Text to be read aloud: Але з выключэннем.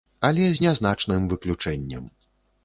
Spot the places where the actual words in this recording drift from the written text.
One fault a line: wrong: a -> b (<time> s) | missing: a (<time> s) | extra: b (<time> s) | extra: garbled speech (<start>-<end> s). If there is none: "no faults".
extra: нязначным (0.6 s)